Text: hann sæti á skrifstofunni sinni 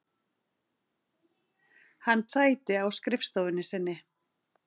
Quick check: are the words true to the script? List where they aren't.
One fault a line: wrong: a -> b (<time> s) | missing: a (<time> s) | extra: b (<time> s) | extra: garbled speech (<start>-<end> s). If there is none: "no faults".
no faults